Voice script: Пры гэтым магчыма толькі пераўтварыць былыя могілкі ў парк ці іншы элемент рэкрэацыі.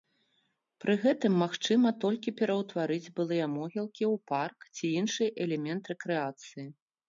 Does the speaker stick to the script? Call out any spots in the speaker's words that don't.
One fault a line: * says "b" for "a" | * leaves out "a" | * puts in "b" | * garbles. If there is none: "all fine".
all fine